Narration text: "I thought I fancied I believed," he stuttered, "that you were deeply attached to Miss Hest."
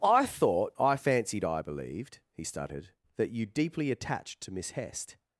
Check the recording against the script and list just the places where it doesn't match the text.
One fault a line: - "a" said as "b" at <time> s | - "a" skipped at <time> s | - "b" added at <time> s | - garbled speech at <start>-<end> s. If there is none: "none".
- "were" skipped at 3.5 s